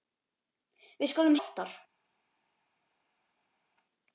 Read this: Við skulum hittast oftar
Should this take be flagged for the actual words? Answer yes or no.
yes